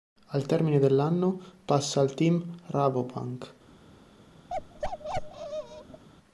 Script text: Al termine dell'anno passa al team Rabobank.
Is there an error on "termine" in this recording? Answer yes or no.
no